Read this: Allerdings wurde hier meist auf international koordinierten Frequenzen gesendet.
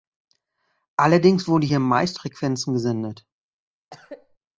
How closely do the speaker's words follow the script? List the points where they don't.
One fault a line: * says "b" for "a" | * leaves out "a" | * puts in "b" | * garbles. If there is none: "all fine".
* leaves out "auf international koordinierten"